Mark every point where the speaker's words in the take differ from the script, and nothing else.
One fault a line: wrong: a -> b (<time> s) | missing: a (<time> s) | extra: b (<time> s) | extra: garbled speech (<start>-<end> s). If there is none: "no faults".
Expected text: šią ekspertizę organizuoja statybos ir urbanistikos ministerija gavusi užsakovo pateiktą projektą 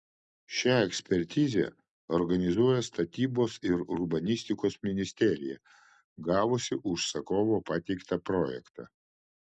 no faults